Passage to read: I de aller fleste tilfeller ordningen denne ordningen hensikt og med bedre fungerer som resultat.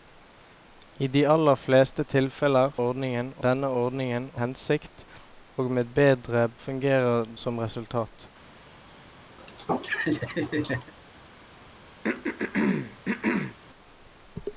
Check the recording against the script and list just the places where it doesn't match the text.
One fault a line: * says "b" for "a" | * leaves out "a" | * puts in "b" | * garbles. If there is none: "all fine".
all fine